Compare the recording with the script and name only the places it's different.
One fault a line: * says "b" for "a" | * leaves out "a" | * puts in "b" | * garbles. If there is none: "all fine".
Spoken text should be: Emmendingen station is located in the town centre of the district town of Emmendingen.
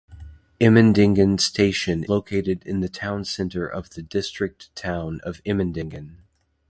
* leaves out "is"